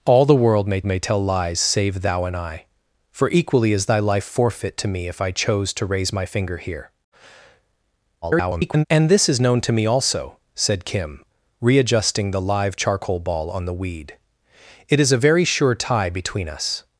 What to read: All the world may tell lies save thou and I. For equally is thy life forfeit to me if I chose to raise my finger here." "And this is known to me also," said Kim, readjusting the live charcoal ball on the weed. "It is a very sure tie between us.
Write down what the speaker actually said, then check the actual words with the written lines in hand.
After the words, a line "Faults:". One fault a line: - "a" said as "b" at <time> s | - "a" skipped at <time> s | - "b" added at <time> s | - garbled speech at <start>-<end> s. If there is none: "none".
All the world may may tell lies save thou and I. For equally is thy life forfeit to me if I chose to raise my finger here." [garbled] "And this is known to me also," said Kim, readjusting the live charcoal ball on the weed. "It is a very sure tie between us.
Faults:
- "may" added at 0.9 s
- garbled speech at 8.2-8.9 s